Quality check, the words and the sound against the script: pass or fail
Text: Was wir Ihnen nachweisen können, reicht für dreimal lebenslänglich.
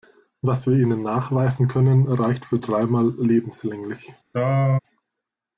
fail